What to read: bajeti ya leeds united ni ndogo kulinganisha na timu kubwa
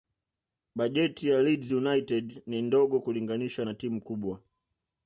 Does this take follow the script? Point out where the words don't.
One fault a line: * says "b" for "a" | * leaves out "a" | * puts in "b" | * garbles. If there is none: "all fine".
all fine